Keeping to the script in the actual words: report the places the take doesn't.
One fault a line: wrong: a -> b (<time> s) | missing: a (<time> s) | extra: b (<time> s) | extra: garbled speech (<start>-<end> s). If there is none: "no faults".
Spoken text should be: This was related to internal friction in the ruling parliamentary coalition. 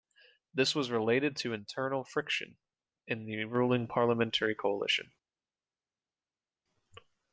no faults